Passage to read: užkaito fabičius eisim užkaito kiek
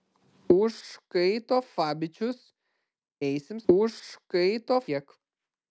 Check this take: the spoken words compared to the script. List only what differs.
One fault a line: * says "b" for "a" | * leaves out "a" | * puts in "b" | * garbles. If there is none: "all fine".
all fine